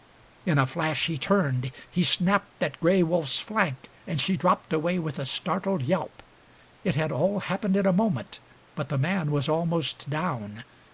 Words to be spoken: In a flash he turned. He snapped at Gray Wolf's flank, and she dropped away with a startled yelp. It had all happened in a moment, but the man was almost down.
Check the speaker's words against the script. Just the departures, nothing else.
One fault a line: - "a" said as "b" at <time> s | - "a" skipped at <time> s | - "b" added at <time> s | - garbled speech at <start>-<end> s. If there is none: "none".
none